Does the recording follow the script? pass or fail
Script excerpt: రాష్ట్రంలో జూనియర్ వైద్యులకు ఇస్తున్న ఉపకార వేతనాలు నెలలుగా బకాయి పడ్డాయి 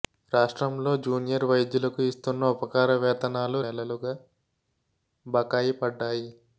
pass